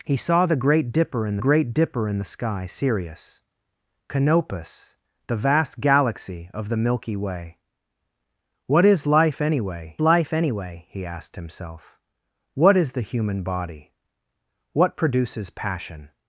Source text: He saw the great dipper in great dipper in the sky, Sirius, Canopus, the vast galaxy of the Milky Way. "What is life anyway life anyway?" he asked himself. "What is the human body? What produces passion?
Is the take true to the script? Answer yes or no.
yes